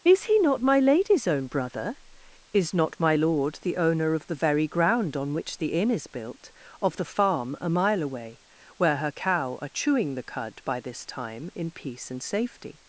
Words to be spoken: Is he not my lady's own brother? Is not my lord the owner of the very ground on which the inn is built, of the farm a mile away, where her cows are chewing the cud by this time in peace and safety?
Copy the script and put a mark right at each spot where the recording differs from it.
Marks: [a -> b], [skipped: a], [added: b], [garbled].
Is he not my lady's own brother? Is not my lord the owner of the very ground on which the inn is built, of the farm a mile away, where her [cows -> cow] are chewing the cud by this time in peace and safety?